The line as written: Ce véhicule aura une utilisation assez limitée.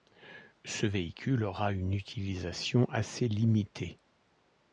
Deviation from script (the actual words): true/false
false